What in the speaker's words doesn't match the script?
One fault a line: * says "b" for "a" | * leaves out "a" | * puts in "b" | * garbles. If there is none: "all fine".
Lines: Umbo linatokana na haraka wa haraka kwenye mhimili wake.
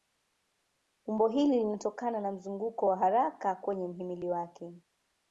* puts in "hili"
* says "mzunguko" for "haraka"